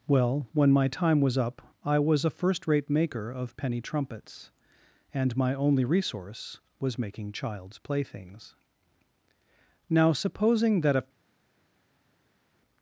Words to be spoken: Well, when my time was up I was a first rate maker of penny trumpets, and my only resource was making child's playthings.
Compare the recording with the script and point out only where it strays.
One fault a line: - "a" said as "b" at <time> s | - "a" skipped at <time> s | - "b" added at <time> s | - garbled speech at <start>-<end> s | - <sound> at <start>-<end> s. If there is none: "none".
- "Now supposing that a" added at 9.9 s